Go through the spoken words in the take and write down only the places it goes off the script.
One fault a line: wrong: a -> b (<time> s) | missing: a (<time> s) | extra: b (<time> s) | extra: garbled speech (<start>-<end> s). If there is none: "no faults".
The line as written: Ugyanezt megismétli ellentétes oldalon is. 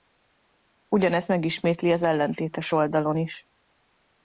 extra: az (1.9 s)